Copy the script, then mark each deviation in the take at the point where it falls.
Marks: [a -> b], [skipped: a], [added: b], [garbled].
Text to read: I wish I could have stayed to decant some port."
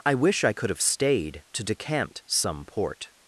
I wish I could have stayed to decant some port."